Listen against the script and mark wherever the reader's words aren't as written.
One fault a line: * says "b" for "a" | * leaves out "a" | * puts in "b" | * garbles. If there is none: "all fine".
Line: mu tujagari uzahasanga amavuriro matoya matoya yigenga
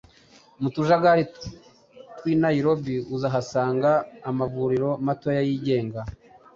* puts in "tw'i nairobi"
* leaves out "matoya"